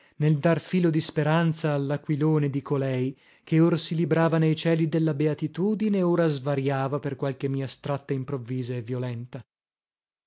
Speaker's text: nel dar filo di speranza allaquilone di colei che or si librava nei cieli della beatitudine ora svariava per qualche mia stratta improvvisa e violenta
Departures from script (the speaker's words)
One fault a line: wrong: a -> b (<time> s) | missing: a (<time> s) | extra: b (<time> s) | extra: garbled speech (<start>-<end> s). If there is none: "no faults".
no faults